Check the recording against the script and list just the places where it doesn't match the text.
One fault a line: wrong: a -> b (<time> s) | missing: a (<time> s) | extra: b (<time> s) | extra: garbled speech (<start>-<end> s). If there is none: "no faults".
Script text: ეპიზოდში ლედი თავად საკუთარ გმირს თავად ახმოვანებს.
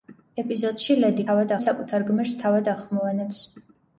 no faults